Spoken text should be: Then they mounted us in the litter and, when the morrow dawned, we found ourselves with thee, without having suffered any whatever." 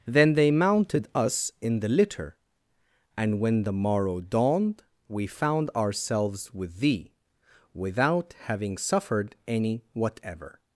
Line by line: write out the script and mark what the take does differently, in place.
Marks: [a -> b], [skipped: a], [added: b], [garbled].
Then they mounted us in the litter and, when the morrow dawned, we found ourselves with thee, without having suffered any whatever."